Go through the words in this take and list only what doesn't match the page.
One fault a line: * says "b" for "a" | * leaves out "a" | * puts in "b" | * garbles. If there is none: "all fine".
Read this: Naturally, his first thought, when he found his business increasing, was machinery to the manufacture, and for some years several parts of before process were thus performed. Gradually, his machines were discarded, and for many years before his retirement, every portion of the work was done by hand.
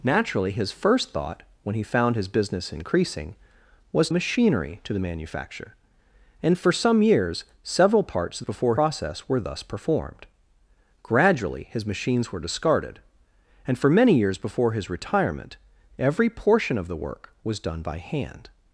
all fine